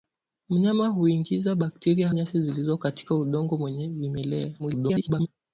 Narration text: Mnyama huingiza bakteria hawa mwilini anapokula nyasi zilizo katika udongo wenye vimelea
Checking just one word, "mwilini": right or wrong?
wrong